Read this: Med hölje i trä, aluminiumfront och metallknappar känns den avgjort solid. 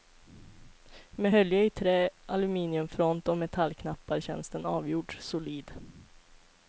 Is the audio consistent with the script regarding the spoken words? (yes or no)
yes